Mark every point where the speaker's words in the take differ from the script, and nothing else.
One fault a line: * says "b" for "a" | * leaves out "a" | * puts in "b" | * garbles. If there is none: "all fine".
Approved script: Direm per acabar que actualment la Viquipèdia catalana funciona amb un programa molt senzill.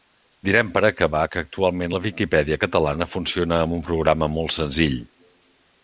all fine